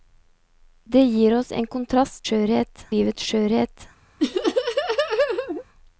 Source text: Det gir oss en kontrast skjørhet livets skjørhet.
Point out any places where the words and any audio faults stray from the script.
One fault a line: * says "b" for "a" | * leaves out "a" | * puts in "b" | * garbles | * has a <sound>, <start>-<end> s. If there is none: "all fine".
* has a laugh, 4.2-5.6 s